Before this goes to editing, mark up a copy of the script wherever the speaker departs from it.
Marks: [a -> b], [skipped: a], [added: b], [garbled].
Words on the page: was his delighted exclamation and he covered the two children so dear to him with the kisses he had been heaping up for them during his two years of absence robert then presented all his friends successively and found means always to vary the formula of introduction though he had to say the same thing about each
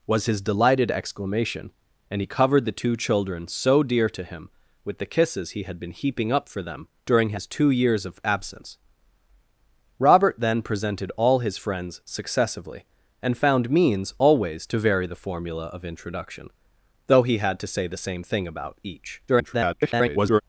was his delighted exclamation and he covered the two children so dear to him with the kisses he had been heaping up for them during his two years of absence robert then presented all his friends successively and found means always to vary the formula of introduction though he had to say the same thing about each [garbled]